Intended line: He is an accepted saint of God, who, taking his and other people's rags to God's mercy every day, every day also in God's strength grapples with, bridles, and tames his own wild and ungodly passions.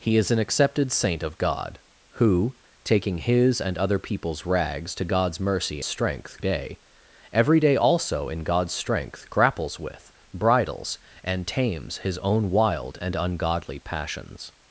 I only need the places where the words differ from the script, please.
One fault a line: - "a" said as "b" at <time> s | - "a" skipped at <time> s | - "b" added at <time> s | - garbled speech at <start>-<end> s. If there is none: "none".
- "every" said as "strength" at 5.8 s